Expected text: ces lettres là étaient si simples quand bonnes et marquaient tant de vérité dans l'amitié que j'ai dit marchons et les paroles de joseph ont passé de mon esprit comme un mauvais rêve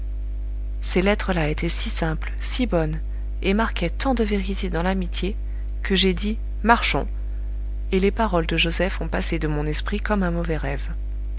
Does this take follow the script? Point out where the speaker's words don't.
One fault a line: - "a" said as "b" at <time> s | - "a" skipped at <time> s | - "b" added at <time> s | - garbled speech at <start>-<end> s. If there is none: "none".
- "quand" said as "si" at 2.4 s